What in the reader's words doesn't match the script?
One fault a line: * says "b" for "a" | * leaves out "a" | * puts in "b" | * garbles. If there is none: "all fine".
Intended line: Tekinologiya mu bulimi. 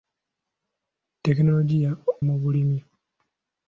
all fine